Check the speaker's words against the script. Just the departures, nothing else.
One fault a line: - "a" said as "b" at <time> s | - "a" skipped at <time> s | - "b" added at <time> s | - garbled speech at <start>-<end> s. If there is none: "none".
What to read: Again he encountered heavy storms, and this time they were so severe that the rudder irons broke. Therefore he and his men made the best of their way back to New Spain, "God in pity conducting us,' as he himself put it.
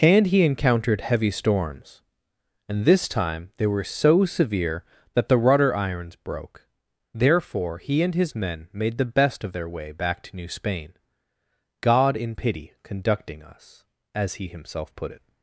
- "Again" said as "And" at 0.0 s